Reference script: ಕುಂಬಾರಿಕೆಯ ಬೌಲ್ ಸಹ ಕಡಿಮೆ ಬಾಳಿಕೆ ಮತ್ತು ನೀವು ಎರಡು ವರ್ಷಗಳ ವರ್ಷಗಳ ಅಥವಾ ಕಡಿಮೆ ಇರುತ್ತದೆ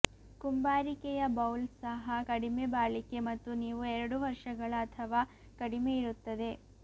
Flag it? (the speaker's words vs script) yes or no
yes